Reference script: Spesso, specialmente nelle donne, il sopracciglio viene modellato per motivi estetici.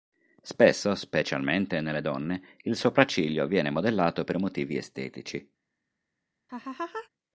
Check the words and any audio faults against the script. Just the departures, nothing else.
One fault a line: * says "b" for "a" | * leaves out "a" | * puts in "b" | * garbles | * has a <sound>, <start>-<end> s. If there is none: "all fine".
* has a laugh, 6.5-7.1 s